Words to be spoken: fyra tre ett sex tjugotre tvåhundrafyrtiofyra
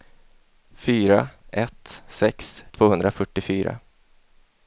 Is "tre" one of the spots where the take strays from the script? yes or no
yes